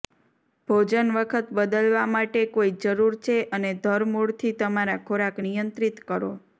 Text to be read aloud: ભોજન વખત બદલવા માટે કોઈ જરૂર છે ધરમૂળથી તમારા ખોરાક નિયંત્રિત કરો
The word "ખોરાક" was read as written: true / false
true